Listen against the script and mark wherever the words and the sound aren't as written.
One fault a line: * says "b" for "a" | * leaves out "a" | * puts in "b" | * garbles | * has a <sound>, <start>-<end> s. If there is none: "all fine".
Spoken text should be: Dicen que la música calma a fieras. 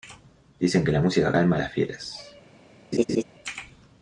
* puts in "las"
* has a laugh, 2.9-3.2 s